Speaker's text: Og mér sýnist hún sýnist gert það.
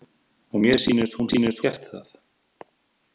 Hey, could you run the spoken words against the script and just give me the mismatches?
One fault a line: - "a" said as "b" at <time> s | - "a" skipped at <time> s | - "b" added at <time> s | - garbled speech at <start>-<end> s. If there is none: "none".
none